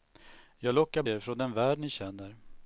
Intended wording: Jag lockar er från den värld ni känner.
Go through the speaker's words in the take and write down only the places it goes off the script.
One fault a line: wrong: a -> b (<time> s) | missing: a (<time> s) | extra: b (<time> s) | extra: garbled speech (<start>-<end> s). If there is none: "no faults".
no faults